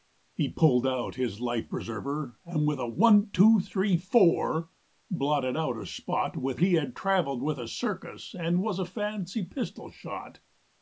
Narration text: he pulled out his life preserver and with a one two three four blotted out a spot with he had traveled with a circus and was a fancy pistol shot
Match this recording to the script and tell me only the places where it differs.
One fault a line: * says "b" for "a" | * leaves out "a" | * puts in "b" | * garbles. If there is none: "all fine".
all fine